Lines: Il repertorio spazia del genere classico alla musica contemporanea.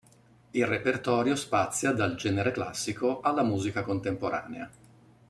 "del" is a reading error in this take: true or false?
true